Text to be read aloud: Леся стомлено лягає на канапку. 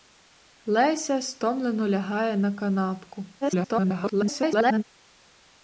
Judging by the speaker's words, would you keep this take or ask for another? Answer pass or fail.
fail